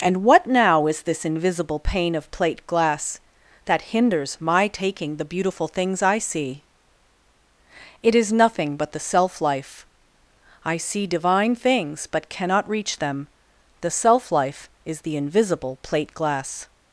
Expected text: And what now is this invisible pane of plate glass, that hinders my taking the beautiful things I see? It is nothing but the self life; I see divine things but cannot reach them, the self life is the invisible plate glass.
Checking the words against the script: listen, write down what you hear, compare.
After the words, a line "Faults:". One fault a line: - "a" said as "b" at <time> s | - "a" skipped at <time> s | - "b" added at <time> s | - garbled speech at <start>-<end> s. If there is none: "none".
And what now is this invisible pane of plate glass, that hinders my taking the beautiful things I see? It is nothing but the self life; I see divine things but cannot reach them, the self life is the invisible plate glass.
Faults:
none